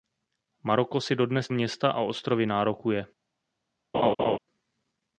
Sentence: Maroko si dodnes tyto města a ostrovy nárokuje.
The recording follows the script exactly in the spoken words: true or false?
false